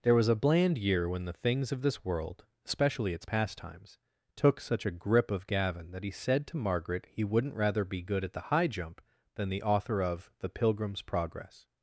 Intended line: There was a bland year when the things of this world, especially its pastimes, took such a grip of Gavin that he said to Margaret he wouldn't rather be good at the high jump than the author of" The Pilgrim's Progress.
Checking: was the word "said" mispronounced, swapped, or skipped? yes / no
no